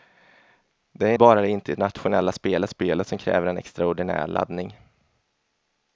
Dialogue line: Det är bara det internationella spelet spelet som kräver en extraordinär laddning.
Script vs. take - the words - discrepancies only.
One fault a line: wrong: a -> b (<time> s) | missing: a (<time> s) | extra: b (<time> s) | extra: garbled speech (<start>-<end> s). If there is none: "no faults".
no faults